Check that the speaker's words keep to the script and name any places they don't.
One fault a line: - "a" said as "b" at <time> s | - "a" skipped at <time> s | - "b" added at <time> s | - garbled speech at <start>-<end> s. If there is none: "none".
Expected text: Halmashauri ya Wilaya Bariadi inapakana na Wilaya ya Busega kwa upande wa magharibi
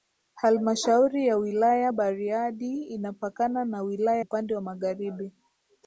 - "ya Busega kwa" skipped at 4.2 s